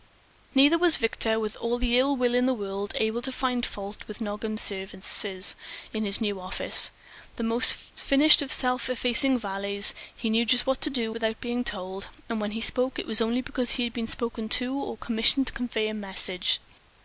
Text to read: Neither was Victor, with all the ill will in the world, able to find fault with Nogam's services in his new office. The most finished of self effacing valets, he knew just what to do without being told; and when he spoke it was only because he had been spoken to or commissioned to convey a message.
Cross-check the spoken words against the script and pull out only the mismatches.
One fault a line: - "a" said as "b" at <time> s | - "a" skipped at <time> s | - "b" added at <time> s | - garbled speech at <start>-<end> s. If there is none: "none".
none